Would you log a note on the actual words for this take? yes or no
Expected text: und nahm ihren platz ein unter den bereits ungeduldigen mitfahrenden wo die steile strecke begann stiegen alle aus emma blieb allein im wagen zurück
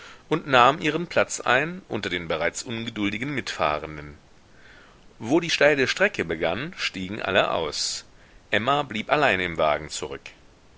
no